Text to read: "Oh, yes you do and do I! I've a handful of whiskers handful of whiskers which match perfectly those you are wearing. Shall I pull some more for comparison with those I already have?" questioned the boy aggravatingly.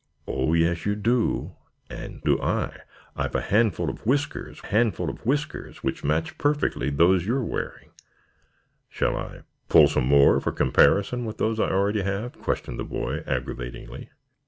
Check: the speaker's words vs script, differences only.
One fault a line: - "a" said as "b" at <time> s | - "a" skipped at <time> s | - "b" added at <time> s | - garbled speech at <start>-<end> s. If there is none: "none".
none